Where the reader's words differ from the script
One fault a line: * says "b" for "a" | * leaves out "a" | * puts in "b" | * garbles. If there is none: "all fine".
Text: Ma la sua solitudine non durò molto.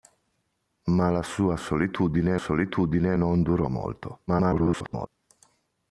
* puts in "solitudine"
* garbles